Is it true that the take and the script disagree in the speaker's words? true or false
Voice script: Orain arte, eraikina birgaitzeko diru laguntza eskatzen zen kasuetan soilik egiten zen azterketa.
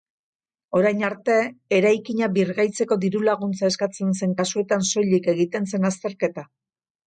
false